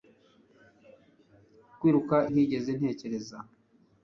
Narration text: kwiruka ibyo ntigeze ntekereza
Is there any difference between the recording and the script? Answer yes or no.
yes